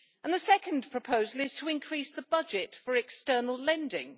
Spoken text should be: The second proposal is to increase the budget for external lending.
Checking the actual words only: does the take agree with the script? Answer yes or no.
yes